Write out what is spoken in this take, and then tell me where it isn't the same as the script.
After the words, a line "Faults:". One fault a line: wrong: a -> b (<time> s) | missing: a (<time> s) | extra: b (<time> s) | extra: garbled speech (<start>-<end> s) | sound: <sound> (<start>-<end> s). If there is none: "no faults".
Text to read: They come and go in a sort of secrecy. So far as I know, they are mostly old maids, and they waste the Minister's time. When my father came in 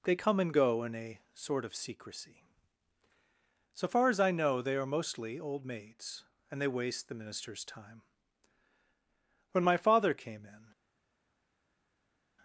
They come and go in a sort of secrecy. So far as I know, they are mostly old maids, and they waste the Minister's time. When my father came in
Faults:
no faults